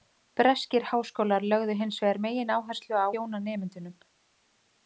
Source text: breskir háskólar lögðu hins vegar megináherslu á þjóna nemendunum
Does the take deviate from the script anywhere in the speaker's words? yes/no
no